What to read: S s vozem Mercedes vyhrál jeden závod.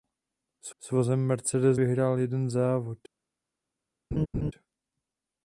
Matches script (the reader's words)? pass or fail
pass